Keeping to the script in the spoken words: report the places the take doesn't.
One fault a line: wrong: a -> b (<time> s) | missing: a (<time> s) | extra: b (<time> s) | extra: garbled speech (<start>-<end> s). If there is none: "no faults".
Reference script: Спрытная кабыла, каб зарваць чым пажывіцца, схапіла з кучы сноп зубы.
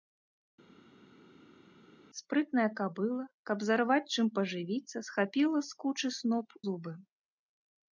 no faults